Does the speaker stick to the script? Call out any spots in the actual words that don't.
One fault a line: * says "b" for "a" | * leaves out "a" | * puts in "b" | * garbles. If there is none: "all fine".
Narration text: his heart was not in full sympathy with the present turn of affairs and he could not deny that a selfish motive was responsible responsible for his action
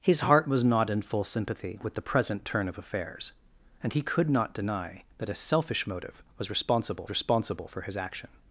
all fine